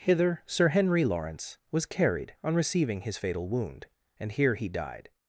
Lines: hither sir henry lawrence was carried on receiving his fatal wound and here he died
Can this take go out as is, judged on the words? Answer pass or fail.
pass